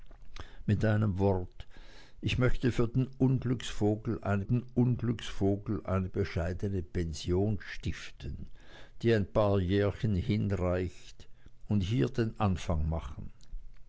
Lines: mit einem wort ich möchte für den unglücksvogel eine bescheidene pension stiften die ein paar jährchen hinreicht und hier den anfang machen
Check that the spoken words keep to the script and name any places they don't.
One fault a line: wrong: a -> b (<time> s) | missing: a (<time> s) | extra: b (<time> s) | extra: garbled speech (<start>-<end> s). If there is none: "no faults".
extra: den unglücksvogel eine (4.4 s)